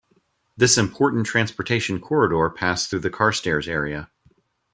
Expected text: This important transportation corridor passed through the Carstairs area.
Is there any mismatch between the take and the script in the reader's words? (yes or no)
no